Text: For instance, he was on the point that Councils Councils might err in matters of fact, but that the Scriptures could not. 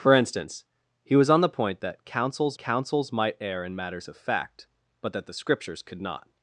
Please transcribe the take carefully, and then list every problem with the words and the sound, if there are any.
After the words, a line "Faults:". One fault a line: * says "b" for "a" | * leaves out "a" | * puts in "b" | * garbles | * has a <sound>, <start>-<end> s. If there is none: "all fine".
For instance, he was on the point that Councils Councils might err in matters of fact, but that the Scriptures could not.
Faults:
all fine